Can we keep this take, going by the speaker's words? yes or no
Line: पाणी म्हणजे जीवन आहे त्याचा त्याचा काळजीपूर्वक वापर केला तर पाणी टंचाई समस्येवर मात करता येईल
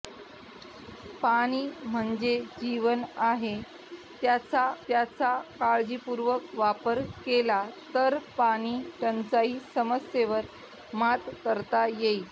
yes